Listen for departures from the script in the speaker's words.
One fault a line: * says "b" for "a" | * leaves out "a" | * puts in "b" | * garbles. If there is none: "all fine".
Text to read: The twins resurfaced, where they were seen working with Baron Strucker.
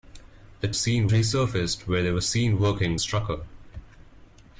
* says "seen" for "twins"
* leaves out "with Baron"